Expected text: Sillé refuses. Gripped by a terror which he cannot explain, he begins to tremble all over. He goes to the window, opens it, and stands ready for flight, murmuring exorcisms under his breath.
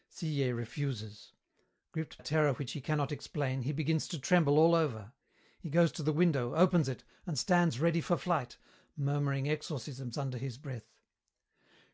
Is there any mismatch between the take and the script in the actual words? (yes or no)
yes